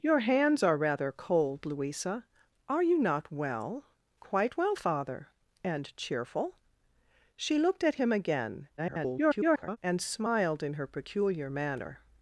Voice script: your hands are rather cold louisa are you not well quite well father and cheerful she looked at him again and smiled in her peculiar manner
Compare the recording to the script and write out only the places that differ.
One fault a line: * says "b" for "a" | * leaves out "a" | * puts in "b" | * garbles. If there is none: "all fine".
* garbles